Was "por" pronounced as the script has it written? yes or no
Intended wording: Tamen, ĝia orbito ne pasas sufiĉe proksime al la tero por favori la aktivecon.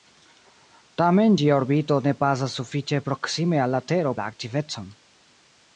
no